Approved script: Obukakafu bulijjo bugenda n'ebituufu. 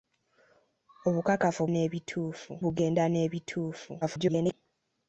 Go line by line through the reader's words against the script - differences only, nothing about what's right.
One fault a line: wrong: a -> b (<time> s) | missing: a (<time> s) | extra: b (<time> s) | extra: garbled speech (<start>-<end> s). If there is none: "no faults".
wrong: bulijjo -> n'ebituufu (1.7 s)
extra: garbled speech (4.0-4.5 s)